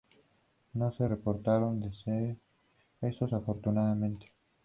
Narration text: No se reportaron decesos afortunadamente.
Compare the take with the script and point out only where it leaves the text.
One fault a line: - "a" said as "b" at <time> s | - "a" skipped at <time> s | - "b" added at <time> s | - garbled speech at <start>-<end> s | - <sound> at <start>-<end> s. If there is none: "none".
none